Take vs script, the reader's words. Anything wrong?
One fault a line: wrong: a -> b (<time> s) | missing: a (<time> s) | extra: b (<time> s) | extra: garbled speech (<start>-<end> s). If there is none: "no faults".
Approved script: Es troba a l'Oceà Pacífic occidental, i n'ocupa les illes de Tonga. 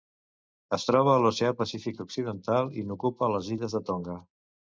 no faults